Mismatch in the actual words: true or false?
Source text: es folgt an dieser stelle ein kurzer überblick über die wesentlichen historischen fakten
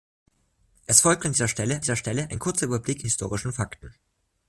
true